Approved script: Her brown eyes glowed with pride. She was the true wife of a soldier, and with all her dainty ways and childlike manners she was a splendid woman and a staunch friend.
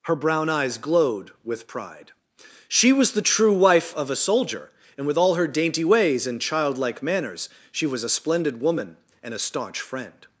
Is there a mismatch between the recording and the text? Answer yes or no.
no